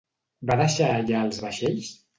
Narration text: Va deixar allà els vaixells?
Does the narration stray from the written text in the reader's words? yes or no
no